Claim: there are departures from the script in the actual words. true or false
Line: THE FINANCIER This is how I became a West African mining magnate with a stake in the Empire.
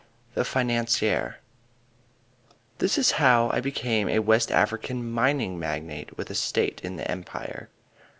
false